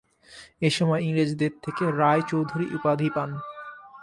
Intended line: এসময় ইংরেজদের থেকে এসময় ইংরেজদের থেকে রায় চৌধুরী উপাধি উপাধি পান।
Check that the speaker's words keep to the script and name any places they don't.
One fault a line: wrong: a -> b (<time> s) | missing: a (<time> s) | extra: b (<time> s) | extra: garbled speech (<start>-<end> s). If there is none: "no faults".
missing: এসময় ইংরেজদের থেকে (1.8 s)
missing: উপাধি (3.1 s)